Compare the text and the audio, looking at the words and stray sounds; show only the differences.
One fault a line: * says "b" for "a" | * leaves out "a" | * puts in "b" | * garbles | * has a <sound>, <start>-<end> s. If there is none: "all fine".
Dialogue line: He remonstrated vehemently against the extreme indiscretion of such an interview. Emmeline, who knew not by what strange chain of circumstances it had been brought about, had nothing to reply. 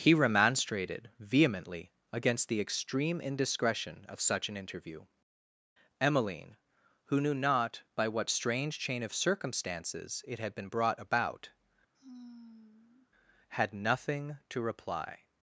* has a sigh, 11.9-13.1 s